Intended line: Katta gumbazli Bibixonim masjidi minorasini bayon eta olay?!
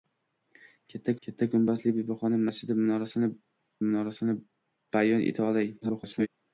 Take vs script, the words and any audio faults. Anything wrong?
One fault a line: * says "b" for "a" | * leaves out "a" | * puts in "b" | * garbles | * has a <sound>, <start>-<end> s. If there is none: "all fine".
* puts in "katta"
* puts in "minorasini"
* garbles